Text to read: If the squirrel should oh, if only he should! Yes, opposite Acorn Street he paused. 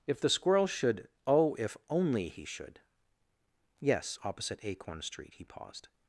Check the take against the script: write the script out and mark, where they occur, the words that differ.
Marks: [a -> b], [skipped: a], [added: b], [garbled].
If the squirrel should oh, if only he should! Yes, opposite Acorn Street he paused.